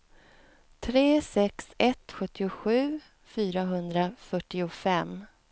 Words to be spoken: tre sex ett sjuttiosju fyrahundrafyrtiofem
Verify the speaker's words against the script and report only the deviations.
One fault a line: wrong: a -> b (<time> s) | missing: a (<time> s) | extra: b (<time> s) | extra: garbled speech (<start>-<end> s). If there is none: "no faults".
no faults